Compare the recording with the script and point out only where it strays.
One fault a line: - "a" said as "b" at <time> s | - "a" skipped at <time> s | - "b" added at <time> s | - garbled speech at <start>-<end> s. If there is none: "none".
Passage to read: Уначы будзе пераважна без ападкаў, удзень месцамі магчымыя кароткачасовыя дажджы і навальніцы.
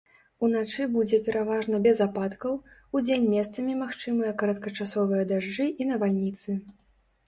none